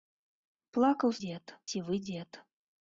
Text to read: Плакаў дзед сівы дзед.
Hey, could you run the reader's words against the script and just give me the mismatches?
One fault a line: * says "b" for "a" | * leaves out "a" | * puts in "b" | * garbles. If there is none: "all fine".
all fine